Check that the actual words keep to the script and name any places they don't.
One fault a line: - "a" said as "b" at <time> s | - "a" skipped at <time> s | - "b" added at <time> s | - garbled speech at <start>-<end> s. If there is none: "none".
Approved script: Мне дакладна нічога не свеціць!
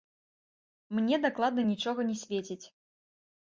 none